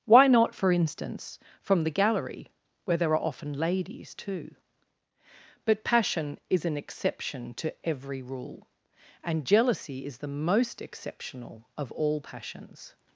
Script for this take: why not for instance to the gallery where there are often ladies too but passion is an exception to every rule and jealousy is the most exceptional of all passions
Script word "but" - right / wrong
right